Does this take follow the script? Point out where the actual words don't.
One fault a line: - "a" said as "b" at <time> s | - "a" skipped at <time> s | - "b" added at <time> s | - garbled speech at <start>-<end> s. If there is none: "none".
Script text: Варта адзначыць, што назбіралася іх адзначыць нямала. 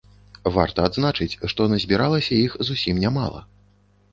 - "адзначыць" said as "зусім" at 2.7 s